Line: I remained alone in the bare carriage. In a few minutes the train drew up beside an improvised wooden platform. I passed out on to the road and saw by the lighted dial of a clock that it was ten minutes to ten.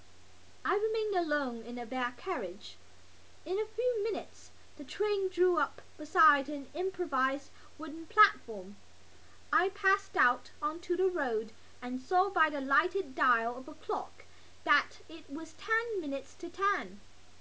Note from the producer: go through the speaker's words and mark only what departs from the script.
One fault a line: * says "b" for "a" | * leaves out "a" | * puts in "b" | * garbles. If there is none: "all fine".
all fine